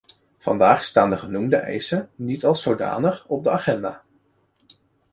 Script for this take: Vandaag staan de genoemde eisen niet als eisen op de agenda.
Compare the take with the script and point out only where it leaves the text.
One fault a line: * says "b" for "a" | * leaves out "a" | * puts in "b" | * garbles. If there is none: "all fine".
* says "zodanig" for "eisen"